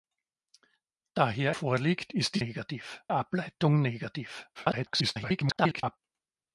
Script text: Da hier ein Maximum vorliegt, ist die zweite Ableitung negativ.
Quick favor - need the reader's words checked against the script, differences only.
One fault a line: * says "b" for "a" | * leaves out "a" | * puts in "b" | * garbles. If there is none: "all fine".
* leaves out "ein Maximum"
* says "negativ" for "zweite"
* garbles